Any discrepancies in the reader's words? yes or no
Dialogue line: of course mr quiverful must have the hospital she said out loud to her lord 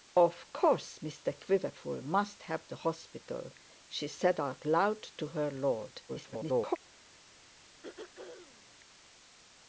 yes